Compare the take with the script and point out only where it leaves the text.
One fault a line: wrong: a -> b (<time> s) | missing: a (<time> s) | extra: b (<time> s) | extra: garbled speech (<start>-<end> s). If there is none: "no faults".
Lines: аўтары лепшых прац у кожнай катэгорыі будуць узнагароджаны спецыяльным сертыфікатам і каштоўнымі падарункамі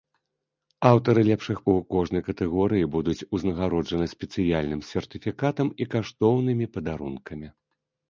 missing: прац (1.6 s)